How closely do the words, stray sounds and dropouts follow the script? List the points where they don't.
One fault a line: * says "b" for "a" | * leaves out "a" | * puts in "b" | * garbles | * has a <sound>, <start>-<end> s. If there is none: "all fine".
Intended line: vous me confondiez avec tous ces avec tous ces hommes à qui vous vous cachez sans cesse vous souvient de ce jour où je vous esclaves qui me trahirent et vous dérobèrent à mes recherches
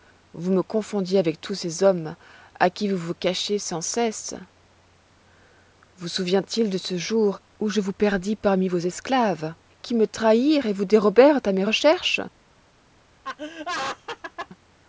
* leaves out "avec tous ces"
* puts in "il"
* puts in "perdis parmi vos"
* has a laugh, 13.2-14.5 s